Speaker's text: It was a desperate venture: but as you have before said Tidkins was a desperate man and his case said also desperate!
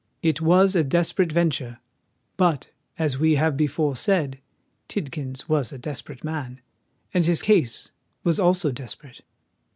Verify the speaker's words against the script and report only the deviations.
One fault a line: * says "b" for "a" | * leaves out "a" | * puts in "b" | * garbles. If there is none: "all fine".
* says "we" for "you"
* says "was" for "said"